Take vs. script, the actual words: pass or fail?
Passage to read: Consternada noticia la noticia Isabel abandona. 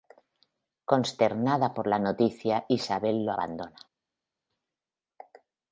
fail